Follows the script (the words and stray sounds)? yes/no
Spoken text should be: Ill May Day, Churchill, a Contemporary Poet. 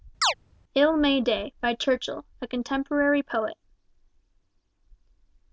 no